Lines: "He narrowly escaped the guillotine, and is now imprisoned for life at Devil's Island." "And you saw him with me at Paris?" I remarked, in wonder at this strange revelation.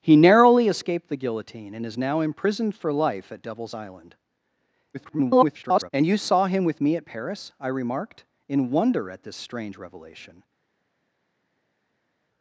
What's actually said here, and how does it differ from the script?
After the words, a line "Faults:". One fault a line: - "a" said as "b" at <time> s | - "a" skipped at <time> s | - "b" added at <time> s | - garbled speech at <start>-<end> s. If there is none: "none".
"He narrowly escaped the guillotine, and is now imprisoned for life at Devil's Island." [garbled] "And you saw him with me at Paris?" I remarked, in wonder at this strange revelation.
Faults:
- garbled speech at 4.9-5.9 s